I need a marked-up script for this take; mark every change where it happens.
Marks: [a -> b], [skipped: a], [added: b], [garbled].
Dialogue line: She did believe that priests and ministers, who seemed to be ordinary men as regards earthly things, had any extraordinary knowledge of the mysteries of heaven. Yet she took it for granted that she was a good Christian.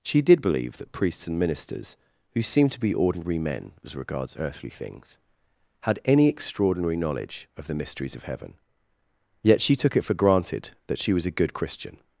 She did believe that priests and ministers, who seemed to be ordinary men as regards earthly things, had any extraordinary knowledge of the mysteries of heaven. Yet she took it for granted that she was a good Christian.